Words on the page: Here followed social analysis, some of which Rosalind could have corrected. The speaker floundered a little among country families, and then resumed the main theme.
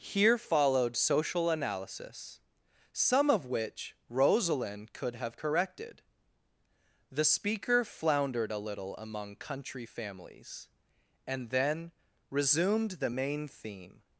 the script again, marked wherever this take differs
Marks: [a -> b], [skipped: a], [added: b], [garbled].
Here followed social analysis, some of which Rosalind could have corrected. The speaker floundered a little among country families, and then resumed the main theme.